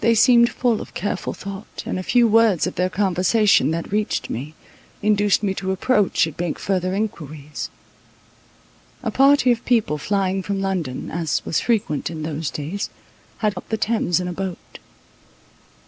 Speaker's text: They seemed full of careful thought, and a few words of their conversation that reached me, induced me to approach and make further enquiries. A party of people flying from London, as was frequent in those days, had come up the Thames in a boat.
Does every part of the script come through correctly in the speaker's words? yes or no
no